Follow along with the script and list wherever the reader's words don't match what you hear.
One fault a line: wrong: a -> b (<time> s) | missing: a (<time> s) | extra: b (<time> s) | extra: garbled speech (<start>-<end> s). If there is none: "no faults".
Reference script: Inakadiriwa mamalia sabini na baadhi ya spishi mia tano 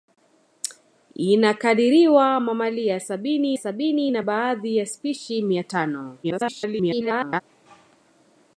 extra: sabini (3.5 s)
extra: garbled speech (6.2-7.4 s)